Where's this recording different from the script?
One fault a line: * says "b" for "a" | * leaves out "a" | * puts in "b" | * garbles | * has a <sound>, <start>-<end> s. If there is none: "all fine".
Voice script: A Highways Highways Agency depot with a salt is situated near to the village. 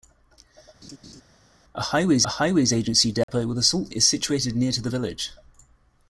* has a laugh, 0.8-1.2 s
* has a dropout, 3.2-3.3 s